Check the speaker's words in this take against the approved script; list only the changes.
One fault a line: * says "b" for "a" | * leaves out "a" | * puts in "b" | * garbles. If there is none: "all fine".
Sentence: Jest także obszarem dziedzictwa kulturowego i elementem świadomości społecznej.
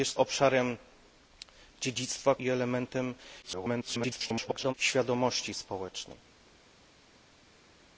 * leaves out "także"
* leaves out "kulturowego"
* garbles